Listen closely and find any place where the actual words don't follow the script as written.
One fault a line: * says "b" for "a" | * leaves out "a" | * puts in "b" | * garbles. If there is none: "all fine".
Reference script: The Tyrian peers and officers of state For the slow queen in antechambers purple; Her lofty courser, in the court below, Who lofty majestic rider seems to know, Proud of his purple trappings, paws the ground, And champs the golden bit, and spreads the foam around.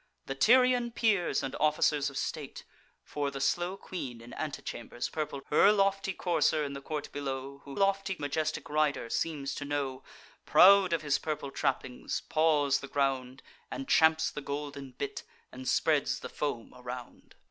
all fine